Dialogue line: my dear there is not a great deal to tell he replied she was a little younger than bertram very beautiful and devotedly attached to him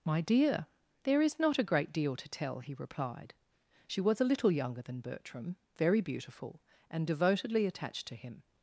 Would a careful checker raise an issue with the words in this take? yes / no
no